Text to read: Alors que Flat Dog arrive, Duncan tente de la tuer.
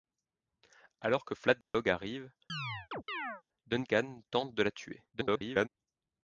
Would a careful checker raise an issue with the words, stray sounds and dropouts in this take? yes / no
yes